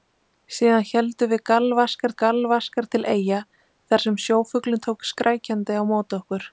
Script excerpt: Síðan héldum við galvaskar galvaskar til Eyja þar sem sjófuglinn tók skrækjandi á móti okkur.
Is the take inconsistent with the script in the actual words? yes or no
no